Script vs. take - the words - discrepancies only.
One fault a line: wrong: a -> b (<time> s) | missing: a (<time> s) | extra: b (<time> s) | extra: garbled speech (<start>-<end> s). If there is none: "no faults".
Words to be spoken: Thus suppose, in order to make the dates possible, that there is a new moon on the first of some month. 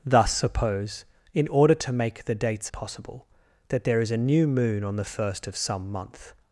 no faults